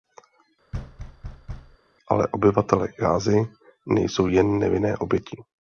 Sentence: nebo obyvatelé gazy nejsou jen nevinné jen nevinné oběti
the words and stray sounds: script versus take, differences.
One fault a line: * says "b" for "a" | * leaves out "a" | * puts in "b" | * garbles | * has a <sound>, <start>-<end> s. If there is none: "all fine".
* has a thud, 0.7-1.8 s
* says "ale" for "nebo"
* leaves out "jen nevinné"